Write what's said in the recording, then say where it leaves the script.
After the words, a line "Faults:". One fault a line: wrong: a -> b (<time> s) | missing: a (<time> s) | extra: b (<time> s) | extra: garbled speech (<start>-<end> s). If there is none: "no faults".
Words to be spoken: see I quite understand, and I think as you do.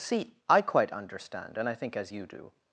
see I quite understand, and I think as you do.
Faults:
no faults